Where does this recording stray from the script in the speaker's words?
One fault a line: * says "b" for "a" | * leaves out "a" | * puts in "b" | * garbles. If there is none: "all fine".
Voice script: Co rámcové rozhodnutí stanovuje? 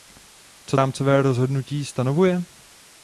all fine